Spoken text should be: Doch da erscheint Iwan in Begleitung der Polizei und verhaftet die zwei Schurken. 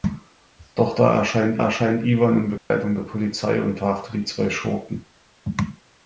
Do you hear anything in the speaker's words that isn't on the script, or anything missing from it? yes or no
yes